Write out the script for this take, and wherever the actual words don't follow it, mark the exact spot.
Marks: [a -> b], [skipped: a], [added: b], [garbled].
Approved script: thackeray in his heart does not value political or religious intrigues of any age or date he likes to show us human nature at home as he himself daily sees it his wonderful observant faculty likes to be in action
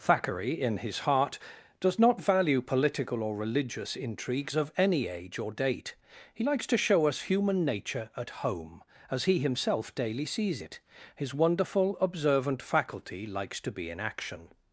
thackeray in his heart does not value political or religious intrigues of any age or date he likes to show us human nature at home as he himself daily sees it his wonderful observant faculty likes to be in action